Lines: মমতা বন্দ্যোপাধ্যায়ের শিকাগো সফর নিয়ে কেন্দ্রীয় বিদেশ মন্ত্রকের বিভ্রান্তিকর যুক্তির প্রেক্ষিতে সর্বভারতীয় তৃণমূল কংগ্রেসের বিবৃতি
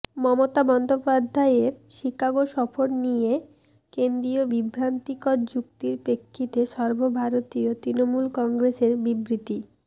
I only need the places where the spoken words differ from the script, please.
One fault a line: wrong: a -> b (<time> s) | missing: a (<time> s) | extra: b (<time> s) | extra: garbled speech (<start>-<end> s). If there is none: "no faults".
missing: বিদেশ মন্ত্রকের (4.4 s)